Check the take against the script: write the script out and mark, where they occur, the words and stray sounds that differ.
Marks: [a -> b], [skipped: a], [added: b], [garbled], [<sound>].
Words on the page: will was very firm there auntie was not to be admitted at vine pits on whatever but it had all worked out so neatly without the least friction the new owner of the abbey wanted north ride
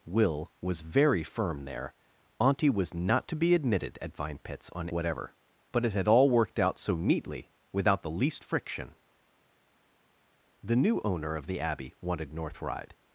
will was very firm there auntie was not to be admitted at vine pits on whatever but it had all worked out so neatly without the least friction the new owner of the abbey wanted north ride